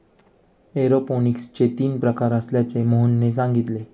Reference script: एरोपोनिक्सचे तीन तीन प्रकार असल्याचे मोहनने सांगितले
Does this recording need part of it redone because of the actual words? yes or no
yes